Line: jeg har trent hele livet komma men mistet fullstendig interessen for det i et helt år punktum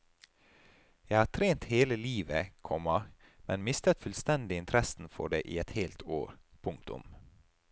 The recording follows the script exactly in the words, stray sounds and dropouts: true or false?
true